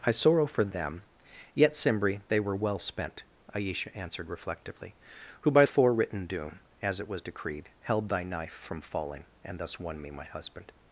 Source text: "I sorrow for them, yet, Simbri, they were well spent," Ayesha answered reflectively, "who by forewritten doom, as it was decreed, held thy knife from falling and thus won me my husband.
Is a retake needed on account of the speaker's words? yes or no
no